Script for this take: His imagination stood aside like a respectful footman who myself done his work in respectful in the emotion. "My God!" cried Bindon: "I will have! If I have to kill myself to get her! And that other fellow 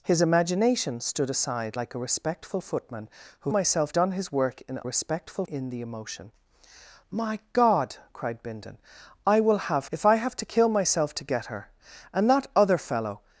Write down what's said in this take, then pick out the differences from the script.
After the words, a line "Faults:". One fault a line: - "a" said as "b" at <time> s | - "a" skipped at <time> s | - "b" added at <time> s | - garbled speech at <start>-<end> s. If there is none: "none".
His imagination stood aside like a respectful footman who myself done his work in respectful in the emotion. "My God!" cried Bindon: "I will have! If I have to kill myself to get her! And that other fellow
Faults:
none